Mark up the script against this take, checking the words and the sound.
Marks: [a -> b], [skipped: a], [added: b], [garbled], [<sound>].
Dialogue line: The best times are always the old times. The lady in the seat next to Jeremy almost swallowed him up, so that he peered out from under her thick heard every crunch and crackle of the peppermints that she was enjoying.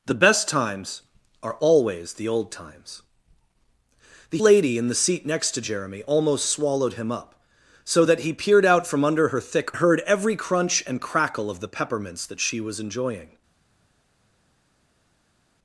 The best times are always the old times. The lady in the seat next to Jeremy almost swallowed him up, so that he peered out from under her thick heard every crunch and crackle of the peppermints that she was enjoying.